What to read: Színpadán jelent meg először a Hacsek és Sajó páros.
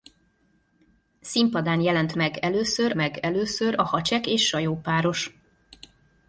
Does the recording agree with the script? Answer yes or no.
no